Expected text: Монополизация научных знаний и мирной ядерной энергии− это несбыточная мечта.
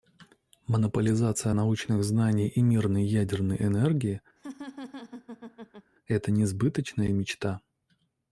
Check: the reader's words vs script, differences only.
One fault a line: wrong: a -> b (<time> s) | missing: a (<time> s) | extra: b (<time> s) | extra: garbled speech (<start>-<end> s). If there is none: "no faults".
no faults